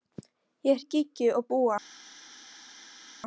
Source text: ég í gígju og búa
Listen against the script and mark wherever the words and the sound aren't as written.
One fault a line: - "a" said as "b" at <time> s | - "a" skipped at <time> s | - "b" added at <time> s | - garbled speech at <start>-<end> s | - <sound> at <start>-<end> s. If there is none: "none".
none